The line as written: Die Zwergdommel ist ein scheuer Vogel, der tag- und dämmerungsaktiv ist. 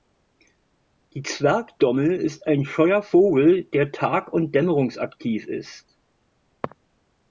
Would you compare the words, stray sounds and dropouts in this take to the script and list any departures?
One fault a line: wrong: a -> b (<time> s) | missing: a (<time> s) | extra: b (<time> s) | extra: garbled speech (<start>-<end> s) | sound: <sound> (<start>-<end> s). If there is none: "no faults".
no faults